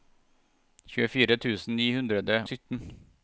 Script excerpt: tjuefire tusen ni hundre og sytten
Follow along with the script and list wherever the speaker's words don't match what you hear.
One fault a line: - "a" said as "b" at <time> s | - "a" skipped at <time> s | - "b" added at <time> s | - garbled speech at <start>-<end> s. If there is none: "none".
- "og" skipped at 2.2 s